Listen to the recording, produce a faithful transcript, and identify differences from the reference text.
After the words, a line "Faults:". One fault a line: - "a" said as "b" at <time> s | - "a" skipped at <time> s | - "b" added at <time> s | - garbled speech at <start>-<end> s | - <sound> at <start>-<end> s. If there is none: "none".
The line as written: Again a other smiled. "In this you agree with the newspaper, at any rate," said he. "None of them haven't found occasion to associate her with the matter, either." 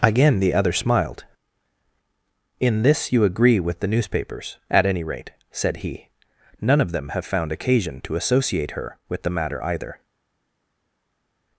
Again the other smiled. "In this you agree with the newspapers, at any rate," said he. "None of them have found occasion to associate her with the matter, either."
Faults:
- "a" said as "the" at 0.4 s
- "newspaper" said as "newspapers" at 3.9 s
- "haven't" said as "have" at 7.1 s